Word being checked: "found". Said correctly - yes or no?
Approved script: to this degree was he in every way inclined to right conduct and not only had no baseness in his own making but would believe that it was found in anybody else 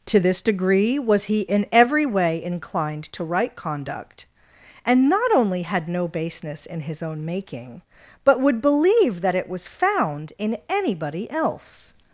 yes